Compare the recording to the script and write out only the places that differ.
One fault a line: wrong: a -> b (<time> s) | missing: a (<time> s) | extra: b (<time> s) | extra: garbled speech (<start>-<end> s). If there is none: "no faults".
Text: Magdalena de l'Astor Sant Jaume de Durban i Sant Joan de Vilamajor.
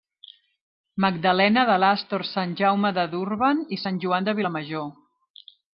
no faults